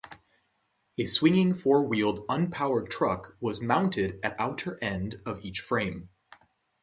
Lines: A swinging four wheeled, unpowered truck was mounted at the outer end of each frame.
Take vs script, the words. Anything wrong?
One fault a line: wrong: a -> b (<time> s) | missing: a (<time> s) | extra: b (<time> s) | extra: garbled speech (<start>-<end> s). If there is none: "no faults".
missing: the (4.4 s)